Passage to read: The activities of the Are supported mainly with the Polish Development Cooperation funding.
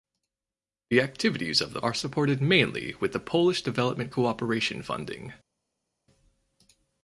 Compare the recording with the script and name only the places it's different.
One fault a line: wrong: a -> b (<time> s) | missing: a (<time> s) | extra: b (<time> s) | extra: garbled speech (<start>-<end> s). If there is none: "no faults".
no faults